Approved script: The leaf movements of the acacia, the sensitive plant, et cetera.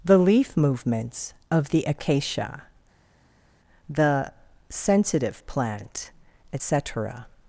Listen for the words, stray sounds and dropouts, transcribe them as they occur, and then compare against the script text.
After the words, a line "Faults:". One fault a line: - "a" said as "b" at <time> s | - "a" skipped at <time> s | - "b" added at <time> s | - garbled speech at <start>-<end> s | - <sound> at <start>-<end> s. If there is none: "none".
The leaf movements of the acacia, the sensitive plant, et cetera.
Faults:
none